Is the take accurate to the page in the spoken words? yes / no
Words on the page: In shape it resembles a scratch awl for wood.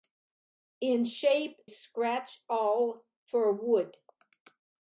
no